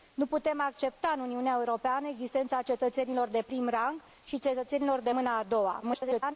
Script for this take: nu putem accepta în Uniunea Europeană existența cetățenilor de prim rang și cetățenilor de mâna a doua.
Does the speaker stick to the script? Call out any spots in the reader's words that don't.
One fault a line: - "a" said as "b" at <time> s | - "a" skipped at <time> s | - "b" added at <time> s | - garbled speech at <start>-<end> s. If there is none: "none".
- garbled speech at 5.8-6.4 s